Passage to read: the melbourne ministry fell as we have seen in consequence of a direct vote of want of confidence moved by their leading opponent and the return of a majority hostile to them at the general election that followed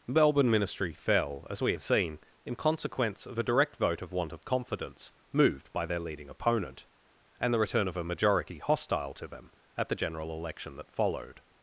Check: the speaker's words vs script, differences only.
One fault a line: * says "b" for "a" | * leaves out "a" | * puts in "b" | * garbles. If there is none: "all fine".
* leaves out "the"